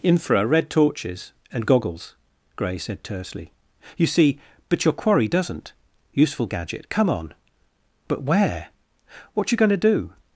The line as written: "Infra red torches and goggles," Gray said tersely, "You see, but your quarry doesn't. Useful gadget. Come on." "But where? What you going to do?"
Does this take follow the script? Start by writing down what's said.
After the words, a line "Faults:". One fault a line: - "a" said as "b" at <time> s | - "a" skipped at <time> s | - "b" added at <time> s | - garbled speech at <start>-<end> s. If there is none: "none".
"Infra red torches and goggles," Gray said tersely, "You see, but your quarry doesn't. Useful gadget. Come on." "But where? What you going to do?"
Faults:
none